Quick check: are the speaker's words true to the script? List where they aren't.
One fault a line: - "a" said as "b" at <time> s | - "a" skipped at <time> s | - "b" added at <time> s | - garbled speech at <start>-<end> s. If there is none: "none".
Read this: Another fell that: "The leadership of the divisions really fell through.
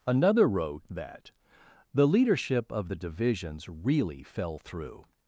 - "fell" said as "wrote" at 0.5 s